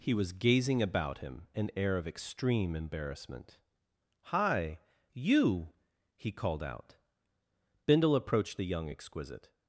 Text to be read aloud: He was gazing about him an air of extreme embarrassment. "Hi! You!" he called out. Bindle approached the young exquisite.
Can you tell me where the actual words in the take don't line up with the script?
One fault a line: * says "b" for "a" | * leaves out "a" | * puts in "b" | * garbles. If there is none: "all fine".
all fine